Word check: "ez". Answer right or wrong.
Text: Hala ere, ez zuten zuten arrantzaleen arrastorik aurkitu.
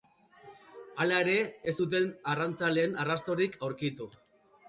right